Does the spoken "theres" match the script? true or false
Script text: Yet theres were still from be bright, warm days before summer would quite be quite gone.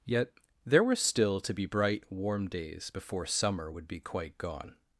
false